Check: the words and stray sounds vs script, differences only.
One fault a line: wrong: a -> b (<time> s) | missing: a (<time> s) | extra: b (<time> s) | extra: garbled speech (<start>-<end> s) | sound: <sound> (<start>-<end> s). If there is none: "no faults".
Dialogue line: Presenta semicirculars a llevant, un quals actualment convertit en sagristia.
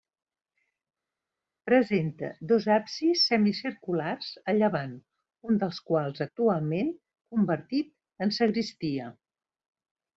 extra: dos absis (2.5 s)
extra: dels (5.6 s)